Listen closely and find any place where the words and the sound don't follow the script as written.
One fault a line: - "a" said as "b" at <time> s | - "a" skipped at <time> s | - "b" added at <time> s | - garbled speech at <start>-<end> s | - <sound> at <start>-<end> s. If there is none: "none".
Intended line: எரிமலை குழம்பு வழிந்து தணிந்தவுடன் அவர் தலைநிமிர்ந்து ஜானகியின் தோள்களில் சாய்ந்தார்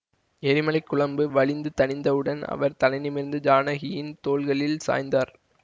none